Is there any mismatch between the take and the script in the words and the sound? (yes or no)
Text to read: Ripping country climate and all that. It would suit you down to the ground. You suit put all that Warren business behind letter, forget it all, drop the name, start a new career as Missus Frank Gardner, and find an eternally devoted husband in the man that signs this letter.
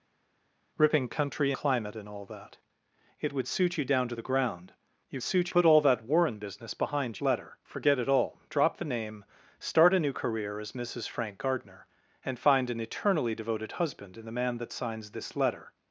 no